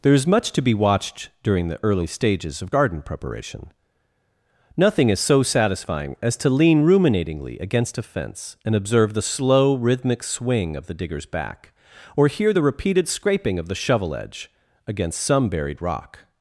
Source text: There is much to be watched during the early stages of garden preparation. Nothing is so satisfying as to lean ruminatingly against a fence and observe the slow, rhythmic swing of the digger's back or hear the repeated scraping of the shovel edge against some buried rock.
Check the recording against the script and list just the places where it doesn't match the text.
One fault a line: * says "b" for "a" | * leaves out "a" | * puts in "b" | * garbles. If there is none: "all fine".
all fine